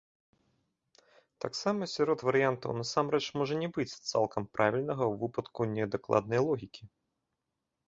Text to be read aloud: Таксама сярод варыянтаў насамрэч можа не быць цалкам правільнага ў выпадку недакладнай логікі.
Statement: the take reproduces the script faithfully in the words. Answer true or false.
true